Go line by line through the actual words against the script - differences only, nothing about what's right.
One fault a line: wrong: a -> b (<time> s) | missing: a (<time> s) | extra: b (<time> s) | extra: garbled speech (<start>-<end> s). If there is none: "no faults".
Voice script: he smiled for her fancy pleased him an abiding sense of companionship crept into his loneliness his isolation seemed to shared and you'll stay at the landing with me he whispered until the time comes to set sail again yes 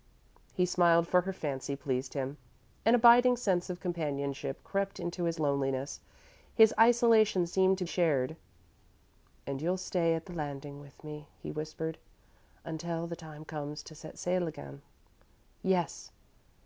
no faults